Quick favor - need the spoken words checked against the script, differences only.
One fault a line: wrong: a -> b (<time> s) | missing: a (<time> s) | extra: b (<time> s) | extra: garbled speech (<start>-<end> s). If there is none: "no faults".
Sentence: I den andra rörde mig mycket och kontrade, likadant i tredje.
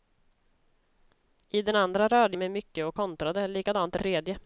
no faults